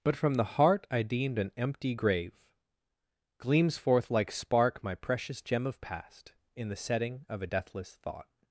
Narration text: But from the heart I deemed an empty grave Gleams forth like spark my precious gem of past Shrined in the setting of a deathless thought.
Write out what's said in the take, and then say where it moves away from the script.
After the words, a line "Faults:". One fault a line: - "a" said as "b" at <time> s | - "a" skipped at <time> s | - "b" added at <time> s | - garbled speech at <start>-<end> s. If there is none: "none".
But from the heart I deemed an empty grave Gleams forth like spark my precious gem of past in the setting of a deathless thought.
Faults:
- "Shrined" skipped at 6.3 s